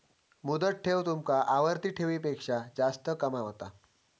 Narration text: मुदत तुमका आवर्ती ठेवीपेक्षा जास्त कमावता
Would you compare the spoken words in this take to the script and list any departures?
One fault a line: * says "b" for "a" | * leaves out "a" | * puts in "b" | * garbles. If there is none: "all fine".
* puts in "ठेव"